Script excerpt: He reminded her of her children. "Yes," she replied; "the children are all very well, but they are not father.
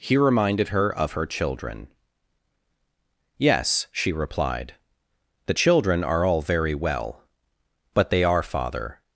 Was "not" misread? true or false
true